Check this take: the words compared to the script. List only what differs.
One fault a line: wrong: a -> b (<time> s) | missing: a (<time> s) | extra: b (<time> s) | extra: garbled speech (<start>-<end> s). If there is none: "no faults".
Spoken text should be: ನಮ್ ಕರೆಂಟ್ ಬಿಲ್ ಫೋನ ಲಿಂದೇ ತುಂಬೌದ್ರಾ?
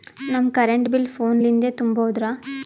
no faults